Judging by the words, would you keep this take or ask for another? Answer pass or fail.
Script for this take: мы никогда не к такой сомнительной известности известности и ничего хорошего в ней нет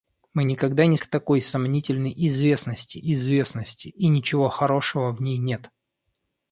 pass